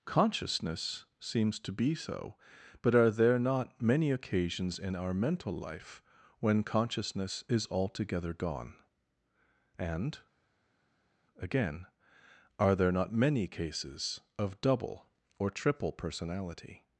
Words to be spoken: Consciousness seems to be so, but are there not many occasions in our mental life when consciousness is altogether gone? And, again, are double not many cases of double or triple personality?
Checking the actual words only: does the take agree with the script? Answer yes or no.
no